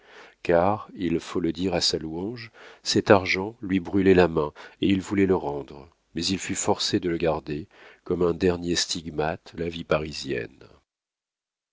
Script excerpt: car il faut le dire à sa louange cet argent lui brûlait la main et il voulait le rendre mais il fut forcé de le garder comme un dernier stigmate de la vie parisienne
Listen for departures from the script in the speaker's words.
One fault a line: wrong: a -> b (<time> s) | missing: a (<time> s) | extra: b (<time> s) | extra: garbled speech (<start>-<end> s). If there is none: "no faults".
missing: de (9.5 s)